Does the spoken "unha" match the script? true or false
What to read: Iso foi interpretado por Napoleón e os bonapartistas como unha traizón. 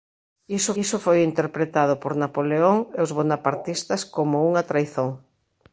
true